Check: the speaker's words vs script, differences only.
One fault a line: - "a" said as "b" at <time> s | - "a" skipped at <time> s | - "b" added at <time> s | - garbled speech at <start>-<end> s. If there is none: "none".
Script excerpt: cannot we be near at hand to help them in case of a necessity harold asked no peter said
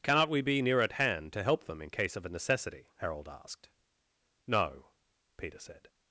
none